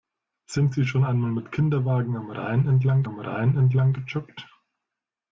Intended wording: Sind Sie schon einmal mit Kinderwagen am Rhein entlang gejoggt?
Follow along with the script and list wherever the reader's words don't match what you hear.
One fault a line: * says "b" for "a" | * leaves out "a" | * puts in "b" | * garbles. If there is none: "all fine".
* puts in "am Rhein entlang"